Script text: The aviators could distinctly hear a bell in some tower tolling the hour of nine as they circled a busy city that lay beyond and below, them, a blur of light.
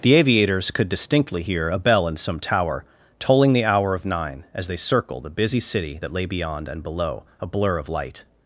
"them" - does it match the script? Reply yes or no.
no